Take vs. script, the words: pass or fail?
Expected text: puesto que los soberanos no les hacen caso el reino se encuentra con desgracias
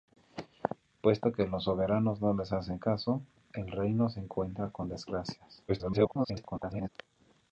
fail